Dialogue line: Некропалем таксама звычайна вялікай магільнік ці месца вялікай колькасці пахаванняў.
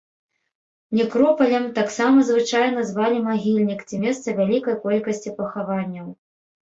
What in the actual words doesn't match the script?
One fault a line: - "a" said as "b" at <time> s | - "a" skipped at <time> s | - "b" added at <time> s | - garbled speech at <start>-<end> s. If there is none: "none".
- "вялікай" said as "звалі" at 2.9 s